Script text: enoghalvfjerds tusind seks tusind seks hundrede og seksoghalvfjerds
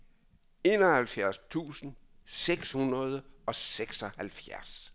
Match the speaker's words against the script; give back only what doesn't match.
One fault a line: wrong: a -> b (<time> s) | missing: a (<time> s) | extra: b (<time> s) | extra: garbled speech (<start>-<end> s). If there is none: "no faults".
missing: tusind seks (2.7 s)